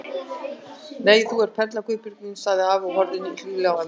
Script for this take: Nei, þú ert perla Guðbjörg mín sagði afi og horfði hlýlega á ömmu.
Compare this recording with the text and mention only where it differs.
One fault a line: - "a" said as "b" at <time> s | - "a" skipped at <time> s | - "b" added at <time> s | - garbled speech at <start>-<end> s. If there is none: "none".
none